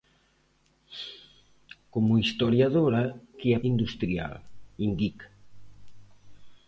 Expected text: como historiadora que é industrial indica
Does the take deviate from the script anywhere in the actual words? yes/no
no